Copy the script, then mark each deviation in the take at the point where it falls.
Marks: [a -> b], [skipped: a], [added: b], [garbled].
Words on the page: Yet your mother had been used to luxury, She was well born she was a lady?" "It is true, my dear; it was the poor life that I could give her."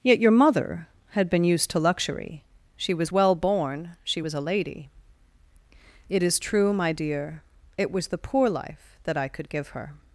Yet your mother had been used to luxury, She was well born she was a lady?" "It is true, my dear; it was the poor life that I could give her."